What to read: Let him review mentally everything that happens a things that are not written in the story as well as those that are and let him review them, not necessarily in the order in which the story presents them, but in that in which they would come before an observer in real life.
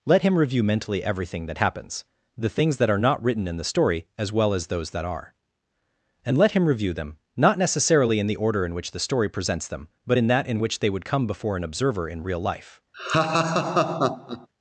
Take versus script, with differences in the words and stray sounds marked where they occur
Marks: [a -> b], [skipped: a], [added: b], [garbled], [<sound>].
Let him review mentally everything that happens [a -> the] things that are not written in the story as well as those that are and let him review them, not necessarily in the order in which the story presents them, but in that in which they would come before an observer in real life. [laugh]